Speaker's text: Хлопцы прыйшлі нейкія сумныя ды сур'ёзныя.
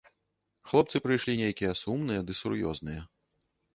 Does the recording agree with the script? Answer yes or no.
yes